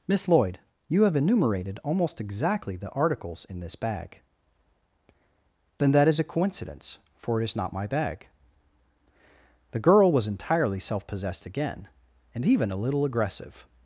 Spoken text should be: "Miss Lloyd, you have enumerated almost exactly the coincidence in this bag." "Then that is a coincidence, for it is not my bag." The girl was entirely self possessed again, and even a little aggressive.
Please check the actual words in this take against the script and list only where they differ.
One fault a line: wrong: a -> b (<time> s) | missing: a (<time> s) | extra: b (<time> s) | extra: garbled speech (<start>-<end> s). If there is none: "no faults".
wrong: coincidence -> articles (2.9 s)